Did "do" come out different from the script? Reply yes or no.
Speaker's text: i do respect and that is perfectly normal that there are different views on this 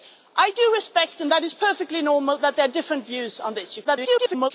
no